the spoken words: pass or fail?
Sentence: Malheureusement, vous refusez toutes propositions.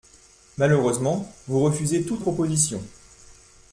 pass